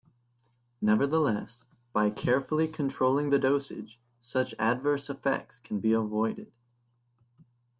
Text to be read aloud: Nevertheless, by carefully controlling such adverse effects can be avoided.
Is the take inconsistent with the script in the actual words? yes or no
yes